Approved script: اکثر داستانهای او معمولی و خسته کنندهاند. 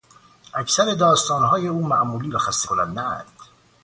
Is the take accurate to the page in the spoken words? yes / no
yes